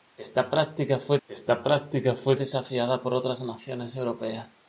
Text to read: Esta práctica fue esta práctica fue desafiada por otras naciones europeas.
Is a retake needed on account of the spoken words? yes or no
no